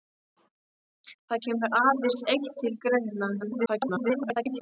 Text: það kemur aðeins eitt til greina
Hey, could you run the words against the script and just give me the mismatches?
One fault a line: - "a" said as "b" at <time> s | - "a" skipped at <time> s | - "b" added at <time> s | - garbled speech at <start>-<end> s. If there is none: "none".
- garbled speech at 3.4-4.6 s